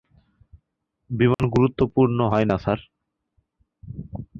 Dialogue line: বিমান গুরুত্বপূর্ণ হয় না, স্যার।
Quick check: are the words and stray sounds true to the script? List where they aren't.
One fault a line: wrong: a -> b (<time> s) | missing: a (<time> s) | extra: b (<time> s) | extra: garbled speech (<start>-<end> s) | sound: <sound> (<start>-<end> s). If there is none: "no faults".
sound: dropout (1.3-1.4 s)